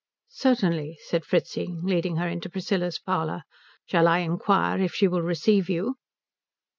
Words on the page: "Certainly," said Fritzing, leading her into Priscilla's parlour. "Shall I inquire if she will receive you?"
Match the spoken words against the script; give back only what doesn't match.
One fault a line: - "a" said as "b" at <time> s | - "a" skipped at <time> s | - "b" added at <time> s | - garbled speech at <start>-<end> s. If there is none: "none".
none